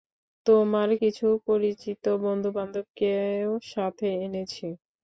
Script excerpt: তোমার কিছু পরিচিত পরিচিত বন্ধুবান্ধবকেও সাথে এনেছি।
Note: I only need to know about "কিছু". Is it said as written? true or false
true